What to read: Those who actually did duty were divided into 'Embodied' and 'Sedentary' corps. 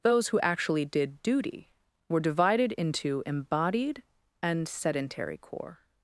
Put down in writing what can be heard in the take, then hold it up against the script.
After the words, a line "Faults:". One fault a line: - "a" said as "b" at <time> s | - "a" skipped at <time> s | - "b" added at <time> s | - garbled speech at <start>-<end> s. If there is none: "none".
Those who actually did duty were divided into 'Embodied' and 'Sedentary' corps.
Faults:
none